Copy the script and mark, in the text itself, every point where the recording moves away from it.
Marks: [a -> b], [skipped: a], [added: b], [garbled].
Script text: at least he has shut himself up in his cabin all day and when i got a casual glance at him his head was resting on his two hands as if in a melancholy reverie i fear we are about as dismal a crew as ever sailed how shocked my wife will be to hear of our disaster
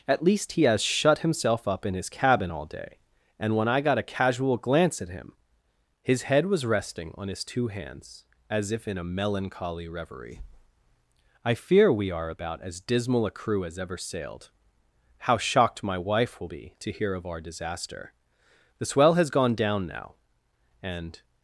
at least he has shut himself up in his cabin all day and when i got a casual glance at him his head was resting on his two hands as if in a melancholy reverie i fear we are about as dismal a crew as ever sailed how shocked my wife will be to hear of our disaster [added: the swell has gone down now and]